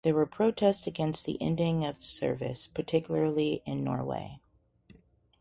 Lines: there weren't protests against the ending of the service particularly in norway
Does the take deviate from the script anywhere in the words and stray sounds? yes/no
yes